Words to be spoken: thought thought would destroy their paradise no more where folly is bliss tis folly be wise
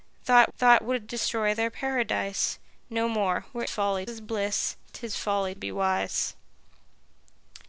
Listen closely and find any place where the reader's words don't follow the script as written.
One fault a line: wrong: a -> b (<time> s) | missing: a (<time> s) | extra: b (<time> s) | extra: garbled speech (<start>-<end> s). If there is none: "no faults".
no faults